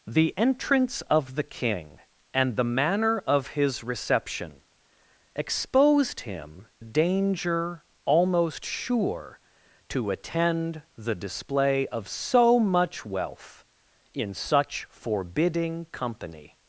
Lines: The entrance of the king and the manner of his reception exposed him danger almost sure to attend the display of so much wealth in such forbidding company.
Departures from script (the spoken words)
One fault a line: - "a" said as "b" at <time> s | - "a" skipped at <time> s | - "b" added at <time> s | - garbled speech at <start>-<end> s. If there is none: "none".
none